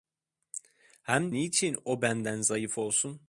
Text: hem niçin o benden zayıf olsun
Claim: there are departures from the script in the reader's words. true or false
false